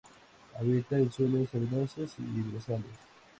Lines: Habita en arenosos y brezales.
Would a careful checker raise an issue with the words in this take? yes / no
yes